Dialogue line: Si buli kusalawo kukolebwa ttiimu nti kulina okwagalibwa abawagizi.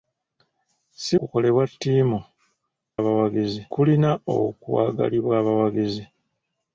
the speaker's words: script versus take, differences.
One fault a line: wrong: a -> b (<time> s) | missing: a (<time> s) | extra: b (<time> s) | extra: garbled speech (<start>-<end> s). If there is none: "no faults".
missing: buli kusalawo (1.1 s)
wrong: nti -> abawagizi (3.0 s)